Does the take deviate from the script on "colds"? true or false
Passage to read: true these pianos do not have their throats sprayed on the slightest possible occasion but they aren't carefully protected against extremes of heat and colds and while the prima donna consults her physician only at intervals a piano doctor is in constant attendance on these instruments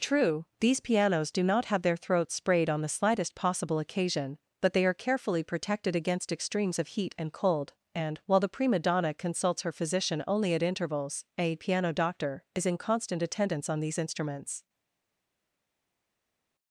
true